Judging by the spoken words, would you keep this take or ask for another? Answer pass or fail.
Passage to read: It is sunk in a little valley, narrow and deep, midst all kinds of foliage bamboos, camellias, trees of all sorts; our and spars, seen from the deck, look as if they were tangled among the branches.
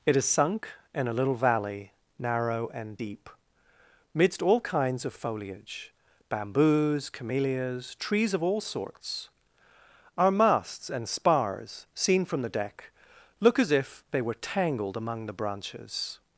fail